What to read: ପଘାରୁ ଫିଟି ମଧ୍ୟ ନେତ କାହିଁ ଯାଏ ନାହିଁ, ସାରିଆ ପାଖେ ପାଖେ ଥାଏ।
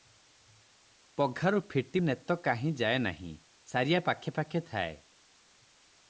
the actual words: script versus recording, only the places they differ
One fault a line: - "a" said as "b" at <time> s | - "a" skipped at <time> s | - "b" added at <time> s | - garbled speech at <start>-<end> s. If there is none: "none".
- "ମଧ୍ୟ" skipped at 2.0 s